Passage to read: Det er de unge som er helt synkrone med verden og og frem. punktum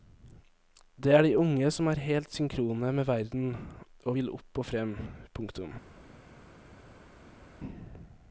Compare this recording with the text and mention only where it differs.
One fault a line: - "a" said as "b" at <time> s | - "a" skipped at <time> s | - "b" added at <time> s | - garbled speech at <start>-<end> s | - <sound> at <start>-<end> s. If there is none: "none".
- "vil opp" added at 4.1 s